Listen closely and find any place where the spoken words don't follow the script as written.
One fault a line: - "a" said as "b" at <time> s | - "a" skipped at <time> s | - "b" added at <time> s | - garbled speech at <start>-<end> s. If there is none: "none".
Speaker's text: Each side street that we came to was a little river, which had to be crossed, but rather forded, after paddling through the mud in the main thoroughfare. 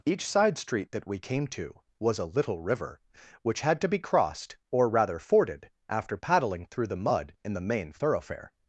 - "but" said as "or" at 4.7 s